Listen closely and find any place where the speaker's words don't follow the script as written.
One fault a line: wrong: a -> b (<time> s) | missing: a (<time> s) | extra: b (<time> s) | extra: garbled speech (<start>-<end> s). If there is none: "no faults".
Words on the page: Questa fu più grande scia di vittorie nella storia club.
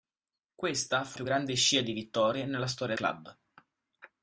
no faults